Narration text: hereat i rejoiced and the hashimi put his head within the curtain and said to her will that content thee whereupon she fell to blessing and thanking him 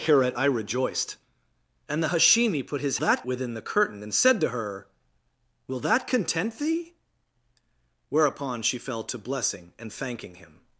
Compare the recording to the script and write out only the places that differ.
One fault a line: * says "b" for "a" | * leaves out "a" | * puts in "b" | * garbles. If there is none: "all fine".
* says "that" for "head"